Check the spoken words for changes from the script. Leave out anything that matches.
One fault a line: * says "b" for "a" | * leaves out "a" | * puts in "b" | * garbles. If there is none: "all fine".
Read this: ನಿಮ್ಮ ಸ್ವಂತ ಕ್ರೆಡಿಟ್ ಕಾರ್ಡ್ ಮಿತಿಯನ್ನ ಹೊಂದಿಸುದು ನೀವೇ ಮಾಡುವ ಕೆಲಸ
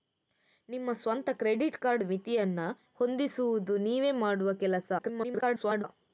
* garbles